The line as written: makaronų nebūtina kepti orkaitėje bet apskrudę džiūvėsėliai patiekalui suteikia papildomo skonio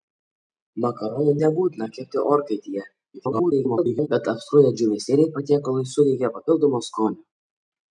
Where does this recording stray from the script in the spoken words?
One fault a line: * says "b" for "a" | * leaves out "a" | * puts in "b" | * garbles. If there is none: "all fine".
* garbles